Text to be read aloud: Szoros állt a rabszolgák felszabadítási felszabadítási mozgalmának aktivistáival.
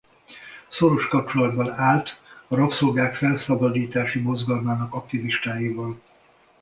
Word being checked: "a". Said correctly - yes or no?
yes